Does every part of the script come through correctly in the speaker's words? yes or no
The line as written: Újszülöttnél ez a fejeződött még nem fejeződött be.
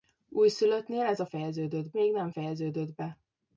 yes